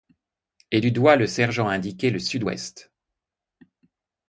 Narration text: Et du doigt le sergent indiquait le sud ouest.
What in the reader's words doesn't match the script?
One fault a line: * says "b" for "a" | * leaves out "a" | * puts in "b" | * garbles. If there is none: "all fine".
all fine